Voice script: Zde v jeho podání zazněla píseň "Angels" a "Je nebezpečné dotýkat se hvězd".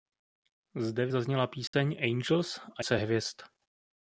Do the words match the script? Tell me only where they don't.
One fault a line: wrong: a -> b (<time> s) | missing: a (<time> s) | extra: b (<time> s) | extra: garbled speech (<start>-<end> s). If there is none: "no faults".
missing: jeho podání (1.1 s)
missing: Je nebezpečné dotýkat (2.8 s)